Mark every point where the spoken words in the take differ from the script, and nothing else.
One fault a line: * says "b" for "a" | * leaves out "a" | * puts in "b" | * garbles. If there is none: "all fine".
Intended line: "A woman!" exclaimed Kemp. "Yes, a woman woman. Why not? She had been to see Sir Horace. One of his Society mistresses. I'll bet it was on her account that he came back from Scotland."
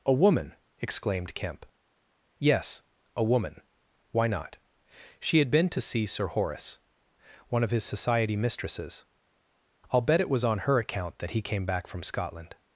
* leaves out "woman"